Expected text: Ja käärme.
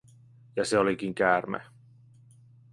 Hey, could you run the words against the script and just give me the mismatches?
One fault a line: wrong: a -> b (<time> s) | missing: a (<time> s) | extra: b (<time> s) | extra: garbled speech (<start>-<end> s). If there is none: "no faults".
extra: se olikin (0.7 s)